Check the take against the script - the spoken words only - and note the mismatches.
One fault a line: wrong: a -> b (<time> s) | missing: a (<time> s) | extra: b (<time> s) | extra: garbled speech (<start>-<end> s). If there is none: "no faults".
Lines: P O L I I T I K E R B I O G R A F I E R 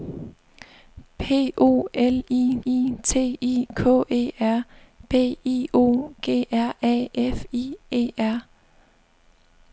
no faults